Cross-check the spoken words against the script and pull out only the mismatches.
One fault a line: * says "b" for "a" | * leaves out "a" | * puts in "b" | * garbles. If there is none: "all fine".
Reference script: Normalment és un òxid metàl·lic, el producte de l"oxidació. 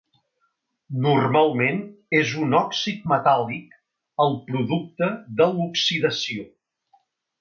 all fine